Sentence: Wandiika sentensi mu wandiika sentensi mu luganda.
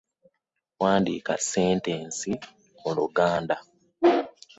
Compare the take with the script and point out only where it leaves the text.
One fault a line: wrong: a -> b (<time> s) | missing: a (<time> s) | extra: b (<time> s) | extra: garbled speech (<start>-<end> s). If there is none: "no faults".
missing: wandiika sentensi mu (2.9 s)